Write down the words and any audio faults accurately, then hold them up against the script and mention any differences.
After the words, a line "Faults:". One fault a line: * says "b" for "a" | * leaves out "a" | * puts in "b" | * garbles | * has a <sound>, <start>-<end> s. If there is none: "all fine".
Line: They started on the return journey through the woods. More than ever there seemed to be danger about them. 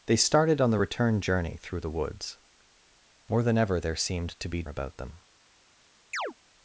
They started on the return journey through the woods. More than ever there seemed to be about them.
Faults:
* leaves out "danger"
* has a chirp, 6.1-6.3 s